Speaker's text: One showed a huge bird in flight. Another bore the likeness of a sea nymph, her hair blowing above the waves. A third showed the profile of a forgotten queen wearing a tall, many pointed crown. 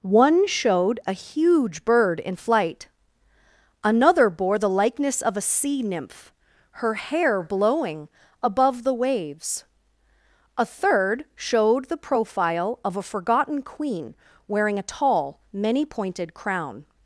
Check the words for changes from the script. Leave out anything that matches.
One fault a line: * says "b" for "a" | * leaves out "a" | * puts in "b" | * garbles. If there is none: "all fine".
all fine